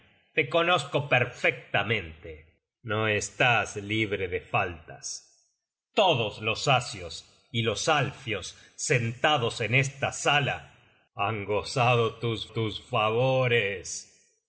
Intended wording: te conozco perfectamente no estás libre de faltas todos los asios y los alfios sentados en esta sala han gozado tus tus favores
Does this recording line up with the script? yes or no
yes